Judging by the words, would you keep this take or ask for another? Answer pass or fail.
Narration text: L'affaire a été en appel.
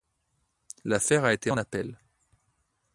pass